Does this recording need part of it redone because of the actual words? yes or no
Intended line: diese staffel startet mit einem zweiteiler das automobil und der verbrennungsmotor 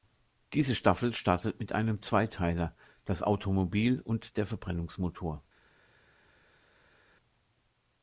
no